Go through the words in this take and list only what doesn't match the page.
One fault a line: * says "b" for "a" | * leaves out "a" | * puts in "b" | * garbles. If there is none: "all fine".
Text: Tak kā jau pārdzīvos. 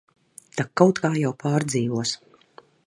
* puts in "kaut"